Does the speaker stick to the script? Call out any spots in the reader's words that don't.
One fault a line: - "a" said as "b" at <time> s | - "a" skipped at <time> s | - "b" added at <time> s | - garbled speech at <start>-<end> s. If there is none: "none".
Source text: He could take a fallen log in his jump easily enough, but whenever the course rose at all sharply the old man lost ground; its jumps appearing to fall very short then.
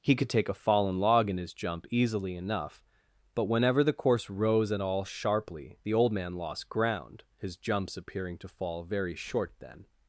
- "its" said as "his" at 7.4 s